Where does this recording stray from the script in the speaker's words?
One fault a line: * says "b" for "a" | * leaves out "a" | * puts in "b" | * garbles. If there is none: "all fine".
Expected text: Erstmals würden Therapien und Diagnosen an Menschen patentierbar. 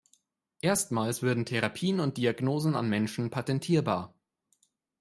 all fine